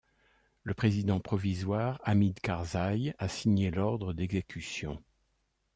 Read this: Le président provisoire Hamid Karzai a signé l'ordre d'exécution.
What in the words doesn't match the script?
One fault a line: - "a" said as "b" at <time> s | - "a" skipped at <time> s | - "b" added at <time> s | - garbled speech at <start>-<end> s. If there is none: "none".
none